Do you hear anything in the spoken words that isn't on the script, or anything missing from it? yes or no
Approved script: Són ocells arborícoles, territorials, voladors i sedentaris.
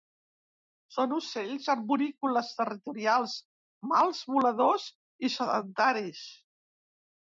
yes